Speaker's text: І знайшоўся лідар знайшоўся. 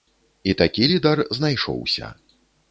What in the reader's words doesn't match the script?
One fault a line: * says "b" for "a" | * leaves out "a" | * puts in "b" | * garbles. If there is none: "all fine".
* says "такі" for "знайшоўся"